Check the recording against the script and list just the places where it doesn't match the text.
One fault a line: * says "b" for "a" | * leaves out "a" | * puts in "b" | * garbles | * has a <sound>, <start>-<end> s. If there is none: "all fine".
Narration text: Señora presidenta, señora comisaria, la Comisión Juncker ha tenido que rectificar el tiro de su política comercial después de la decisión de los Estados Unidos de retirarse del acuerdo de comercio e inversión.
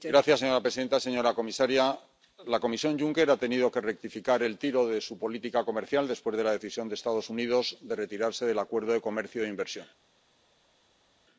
all fine